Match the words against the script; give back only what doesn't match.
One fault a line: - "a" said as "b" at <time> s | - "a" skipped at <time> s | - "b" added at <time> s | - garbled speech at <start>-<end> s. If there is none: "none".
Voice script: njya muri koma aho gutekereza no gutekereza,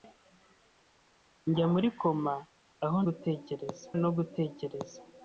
none